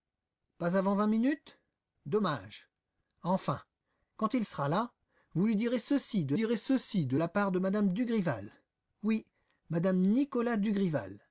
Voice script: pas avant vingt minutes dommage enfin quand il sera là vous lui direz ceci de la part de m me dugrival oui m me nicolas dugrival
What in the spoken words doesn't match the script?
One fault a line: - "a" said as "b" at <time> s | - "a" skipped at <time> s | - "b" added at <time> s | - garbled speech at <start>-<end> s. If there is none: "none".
- "direz ceci de" added at 6.3 s